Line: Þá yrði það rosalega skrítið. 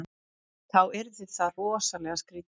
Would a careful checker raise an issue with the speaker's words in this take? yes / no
no